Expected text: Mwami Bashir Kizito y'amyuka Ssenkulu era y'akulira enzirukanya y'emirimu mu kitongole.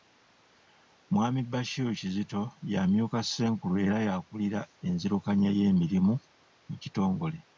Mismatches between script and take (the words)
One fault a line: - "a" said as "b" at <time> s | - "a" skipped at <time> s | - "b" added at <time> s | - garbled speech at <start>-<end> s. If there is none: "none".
none